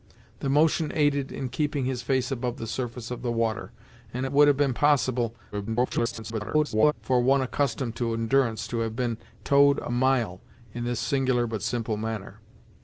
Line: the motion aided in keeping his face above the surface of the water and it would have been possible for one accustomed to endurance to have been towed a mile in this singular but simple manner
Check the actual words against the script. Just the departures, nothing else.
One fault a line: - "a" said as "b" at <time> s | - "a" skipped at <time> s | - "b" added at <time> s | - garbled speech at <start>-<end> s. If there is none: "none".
- garbled speech at 5.5-6.9 s